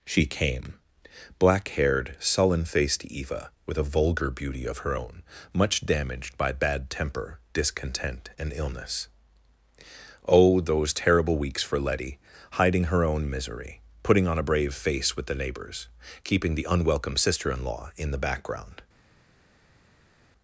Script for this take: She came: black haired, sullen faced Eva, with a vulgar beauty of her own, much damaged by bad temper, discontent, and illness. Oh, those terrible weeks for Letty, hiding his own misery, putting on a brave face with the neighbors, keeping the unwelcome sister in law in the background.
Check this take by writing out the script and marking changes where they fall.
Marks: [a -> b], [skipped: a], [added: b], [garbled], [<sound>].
She came: black haired, sullen faced Eva, with a vulgar beauty of her own, much damaged by bad temper, discontent, and illness. Oh, those terrible weeks for Letty, hiding [his -> her] own misery, putting on a brave face with the neighbors, keeping the unwelcome sister in law in the background.